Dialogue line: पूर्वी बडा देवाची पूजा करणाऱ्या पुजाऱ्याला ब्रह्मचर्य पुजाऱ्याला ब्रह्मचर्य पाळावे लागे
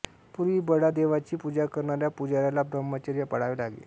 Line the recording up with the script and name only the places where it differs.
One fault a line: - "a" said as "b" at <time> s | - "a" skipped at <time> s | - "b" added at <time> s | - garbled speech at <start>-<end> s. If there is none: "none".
- "पुजाऱ्याला ब्रह्मचर्य" skipped at 3.2 s